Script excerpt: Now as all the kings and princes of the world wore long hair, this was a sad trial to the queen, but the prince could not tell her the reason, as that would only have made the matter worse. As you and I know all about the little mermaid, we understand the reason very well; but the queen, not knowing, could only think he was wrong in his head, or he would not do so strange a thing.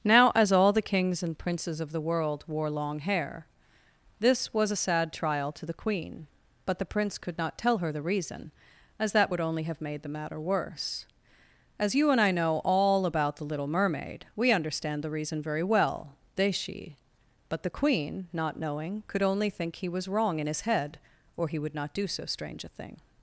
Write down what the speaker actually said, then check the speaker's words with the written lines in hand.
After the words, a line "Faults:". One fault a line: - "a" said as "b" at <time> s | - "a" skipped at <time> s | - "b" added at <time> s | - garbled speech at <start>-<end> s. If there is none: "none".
Now as all the kings and princes of the world wore long hair, this was a sad trial to the queen, but the prince could not tell her the reason, as that would only have made the matter worse. As you and I know all about the little mermaid, we understand the reason very well; they she but the queen, not knowing, could only think he was wrong in his head, or he would not do so strange a thing.
Faults:
- "they she" added at 16.3 s